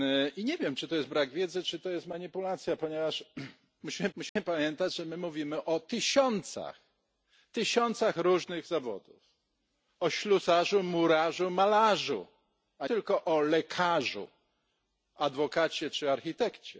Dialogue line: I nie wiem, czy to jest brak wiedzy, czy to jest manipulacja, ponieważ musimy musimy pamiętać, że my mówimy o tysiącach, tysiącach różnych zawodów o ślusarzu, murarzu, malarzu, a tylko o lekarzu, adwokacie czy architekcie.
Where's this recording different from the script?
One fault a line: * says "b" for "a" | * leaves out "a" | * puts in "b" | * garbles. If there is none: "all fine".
all fine